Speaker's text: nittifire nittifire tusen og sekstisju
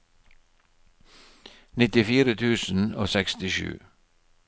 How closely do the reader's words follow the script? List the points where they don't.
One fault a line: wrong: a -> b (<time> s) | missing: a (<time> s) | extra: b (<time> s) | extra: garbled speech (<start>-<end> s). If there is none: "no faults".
missing: nittifire (2.4 s)